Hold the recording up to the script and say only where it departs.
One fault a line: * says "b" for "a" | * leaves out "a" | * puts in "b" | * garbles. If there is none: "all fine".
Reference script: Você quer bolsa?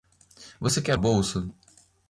all fine